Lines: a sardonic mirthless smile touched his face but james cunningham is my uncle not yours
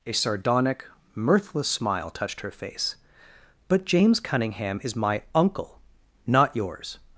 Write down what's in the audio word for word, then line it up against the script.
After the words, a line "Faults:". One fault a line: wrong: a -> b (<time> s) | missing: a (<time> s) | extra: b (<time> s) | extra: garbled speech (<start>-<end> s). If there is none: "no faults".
a sardonic mirthless smile touched her face but james cunningham is my uncle not yours
Faults:
wrong: his -> her (2.4 s)